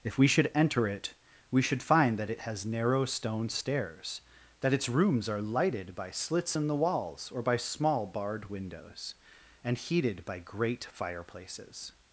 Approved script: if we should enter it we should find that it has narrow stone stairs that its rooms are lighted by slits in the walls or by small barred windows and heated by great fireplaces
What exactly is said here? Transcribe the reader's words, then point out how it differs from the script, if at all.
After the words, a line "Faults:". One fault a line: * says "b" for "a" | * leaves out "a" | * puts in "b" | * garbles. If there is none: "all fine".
if we should enter it we should find that it has narrow stone stairs that its rooms are lighted by slits in the walls or by small barred windows and heated by great fireplaces
Faults:
all fine